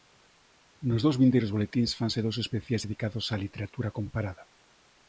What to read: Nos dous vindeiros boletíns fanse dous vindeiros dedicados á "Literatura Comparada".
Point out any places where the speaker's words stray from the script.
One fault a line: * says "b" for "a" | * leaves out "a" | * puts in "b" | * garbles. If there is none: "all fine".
* says "especiais" for "vindeiros"